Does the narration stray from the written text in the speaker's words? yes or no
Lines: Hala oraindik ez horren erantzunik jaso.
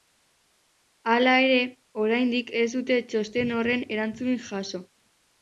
yes